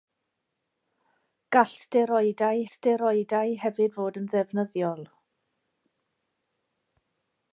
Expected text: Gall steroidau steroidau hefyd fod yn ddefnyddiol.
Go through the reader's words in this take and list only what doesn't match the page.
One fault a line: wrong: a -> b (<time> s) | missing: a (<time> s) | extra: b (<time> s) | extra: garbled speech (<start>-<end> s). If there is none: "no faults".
no faults